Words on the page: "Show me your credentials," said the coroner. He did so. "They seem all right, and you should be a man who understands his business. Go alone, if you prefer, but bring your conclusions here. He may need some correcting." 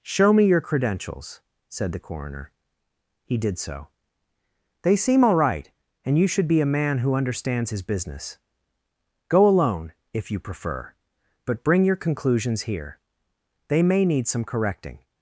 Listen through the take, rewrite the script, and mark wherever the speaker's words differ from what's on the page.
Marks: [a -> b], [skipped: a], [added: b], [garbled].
"Show me your credentials," said the coroner. He did so. "They seem all right, and you should be a man who understands his business. Go alone, if you prefer, but bring your conclusions here. [He -> They] may need some correcting."